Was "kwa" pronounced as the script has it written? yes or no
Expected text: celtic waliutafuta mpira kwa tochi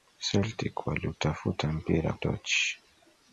no